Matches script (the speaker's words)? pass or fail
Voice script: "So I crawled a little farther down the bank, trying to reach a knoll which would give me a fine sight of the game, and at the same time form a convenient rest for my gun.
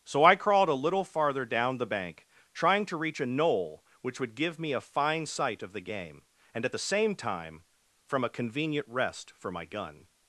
fail